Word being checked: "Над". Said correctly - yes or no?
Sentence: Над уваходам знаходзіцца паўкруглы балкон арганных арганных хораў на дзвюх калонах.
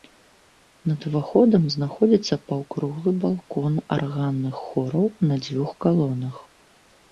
yes